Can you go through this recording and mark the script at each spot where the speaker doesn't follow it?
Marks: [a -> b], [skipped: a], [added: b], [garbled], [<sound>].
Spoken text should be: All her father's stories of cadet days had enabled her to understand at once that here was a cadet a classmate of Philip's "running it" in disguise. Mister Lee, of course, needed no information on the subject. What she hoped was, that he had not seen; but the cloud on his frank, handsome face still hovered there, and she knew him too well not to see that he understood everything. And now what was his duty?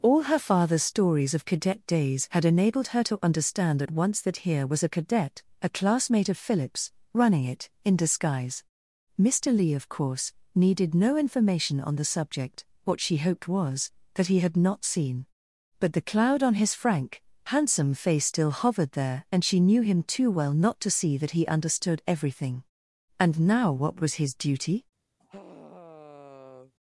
All her father's stories of cadet days had enabled her to understand at once that here was a cadet a classmate of Philip's "running it" in disguise. Mister Lee, of course, needed no information on the subject. What she hoped was, that he had not seen; but the cloud on his frank, handsome face still hovered there, and she knew him too well not to see that he understood everything. And now what was his duty? [sigh]